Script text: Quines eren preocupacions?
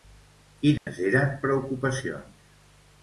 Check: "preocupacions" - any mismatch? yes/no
no